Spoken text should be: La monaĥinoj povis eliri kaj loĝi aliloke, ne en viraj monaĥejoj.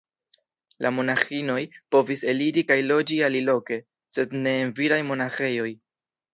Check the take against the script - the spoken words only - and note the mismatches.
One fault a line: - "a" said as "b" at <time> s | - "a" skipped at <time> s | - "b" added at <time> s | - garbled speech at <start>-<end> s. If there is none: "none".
- "sed" added at 4.2 s